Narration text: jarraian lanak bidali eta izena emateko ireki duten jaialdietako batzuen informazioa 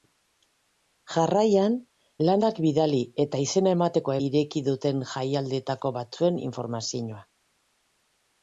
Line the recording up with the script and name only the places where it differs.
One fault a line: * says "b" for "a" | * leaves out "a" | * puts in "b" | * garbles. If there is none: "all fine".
all fine